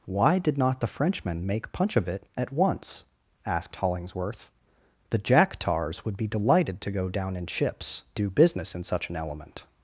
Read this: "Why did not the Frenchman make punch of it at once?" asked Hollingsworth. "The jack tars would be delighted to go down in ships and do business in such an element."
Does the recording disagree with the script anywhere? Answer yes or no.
yes